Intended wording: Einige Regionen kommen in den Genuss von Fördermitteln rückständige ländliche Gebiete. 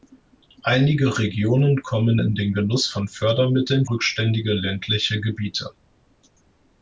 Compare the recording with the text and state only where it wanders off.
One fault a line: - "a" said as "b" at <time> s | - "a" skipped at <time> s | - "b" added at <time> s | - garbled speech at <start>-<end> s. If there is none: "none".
none